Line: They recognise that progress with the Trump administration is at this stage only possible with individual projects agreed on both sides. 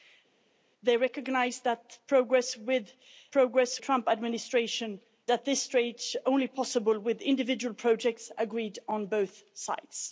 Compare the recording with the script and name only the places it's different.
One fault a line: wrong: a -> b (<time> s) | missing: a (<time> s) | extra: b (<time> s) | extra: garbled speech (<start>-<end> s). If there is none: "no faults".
wrong: the -> progress (3.3 s)
missing: is (5.0 s)